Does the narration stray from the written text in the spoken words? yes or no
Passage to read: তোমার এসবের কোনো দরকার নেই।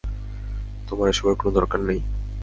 no